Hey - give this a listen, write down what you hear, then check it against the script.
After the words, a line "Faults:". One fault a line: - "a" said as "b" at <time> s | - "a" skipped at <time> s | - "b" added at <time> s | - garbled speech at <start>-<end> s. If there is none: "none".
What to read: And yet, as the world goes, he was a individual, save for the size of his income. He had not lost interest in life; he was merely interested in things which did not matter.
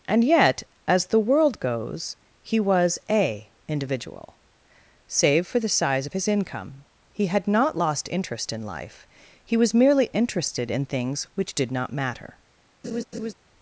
And yet, as the world goes, he was a individual, save for the size of his income. He had not lost interest in life; he was merely interested in things which did not matter.
Faults:
none